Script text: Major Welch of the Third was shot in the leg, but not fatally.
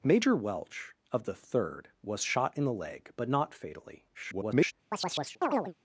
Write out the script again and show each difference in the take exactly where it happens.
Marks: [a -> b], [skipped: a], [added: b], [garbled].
Major Welch of the Third was shot in the leg, but not fatally. [garbled]